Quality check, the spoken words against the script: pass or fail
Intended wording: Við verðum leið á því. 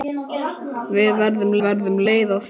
fail